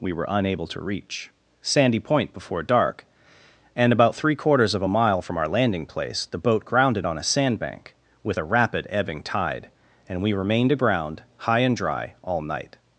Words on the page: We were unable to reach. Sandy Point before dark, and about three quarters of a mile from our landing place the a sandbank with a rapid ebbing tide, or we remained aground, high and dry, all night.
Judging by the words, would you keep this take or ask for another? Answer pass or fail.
fail